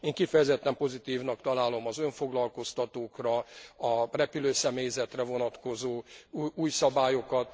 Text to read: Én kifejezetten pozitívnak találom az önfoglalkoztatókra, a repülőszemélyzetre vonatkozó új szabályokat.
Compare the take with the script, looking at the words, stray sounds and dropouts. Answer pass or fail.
pass